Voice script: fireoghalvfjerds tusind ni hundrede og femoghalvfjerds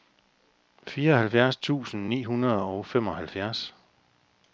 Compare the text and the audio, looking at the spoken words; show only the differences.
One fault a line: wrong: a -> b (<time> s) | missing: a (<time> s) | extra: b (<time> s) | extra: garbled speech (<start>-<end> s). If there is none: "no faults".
no faults